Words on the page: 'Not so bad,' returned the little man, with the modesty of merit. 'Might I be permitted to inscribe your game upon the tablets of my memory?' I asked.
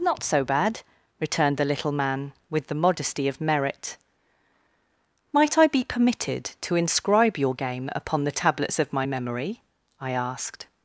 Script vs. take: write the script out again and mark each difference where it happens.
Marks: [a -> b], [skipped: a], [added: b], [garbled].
'Not so bad,' returned the little man, with the modesty of merit. 'Might I be permitted to inscribe your game upon the tablets of my memory?' I asked.